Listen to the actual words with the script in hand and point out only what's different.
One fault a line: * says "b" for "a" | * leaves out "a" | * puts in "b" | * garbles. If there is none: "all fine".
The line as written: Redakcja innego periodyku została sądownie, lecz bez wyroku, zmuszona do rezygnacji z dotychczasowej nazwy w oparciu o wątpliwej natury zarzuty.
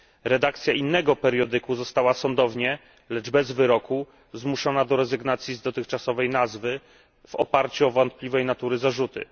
all fine